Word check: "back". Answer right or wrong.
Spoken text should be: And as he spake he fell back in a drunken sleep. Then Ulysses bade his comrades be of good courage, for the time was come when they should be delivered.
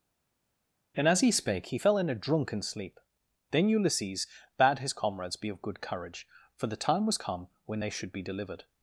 wrong